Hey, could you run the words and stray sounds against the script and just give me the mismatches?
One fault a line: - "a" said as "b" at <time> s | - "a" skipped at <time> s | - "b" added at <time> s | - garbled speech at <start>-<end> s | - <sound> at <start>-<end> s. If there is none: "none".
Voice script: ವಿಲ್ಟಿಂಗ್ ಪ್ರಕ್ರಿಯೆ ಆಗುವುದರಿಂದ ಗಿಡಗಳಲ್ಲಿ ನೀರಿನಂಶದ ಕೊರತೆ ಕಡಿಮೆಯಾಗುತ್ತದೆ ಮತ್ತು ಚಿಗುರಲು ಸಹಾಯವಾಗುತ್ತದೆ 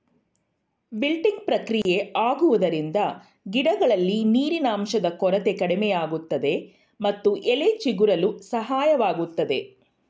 - dropout at 1.8-1.9 s
- "ಎಲೆ" added at 7.5 s